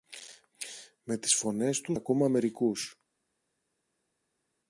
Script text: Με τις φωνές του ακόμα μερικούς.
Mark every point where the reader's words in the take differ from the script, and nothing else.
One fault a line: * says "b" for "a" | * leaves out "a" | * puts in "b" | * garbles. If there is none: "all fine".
all fine